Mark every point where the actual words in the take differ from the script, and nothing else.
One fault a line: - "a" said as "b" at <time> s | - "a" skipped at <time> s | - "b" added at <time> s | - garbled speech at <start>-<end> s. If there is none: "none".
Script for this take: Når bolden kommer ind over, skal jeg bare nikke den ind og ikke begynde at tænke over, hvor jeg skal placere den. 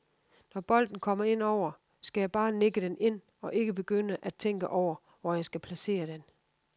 none